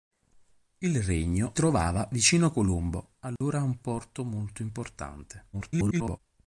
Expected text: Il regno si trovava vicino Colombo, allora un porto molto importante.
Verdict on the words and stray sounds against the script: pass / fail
fail